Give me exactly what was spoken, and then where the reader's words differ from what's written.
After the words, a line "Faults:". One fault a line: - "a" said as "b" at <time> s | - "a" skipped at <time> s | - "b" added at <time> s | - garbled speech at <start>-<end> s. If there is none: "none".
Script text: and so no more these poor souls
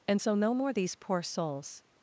and so no more these poor souls
Faults:
none